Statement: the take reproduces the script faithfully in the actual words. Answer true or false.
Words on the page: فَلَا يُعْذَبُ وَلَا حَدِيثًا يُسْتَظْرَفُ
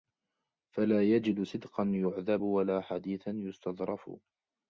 false